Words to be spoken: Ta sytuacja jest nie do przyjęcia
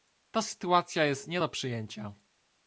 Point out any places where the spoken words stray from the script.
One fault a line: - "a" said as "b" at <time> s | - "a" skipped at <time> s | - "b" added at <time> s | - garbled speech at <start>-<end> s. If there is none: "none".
none